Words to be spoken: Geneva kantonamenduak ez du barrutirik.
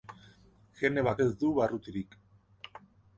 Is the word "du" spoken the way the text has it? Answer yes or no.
yes